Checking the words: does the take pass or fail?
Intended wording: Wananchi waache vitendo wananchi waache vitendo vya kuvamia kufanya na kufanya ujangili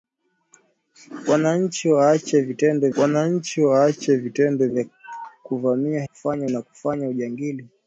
pass